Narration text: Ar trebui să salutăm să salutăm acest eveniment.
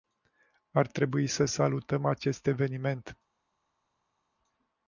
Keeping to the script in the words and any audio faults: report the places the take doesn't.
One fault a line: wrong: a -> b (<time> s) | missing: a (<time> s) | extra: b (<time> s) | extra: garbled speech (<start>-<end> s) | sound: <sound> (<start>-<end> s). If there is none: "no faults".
missing: să salutăm (2.0 s)